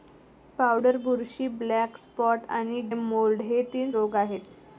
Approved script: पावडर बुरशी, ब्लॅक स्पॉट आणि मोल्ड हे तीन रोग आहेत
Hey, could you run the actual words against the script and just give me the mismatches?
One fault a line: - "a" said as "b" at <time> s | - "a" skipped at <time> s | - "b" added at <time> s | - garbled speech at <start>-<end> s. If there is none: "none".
none